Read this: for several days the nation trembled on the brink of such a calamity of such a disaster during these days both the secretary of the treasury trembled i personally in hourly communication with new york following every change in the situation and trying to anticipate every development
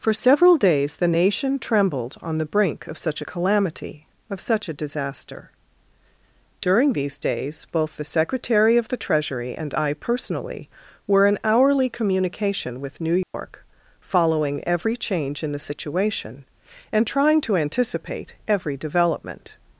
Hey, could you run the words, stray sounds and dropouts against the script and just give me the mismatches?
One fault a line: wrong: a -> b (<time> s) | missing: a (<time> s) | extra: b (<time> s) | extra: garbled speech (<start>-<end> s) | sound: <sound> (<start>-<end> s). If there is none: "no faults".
wrong: trembled -> and (9.6 s)
extra: were (11.1 s)
sound: dropout (13.2-13.3 s)